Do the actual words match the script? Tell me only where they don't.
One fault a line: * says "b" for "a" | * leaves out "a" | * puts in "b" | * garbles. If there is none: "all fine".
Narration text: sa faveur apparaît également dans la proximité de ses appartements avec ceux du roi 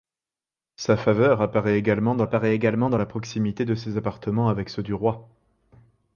* puts in "apparaît également dans"